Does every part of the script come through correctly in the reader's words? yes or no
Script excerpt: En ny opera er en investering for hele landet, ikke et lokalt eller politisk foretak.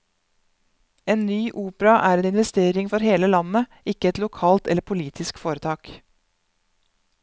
yes